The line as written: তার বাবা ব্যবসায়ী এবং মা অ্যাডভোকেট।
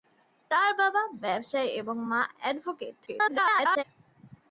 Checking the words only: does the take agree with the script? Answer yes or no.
no